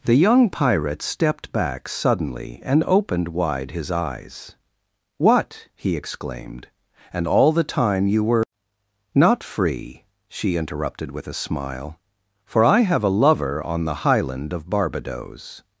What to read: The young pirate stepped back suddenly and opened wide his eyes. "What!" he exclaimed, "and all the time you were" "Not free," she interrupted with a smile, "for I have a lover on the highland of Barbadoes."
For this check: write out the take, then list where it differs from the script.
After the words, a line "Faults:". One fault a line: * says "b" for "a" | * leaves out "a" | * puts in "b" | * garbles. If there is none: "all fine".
The young pirate stepped back suddenly and opened wide his eyes. "What!" he exclaimed, "and all the time you were" "Not free," she interrupted with a smile, "for I have a lover on the highland of Barbadoes."
Faults:
all fine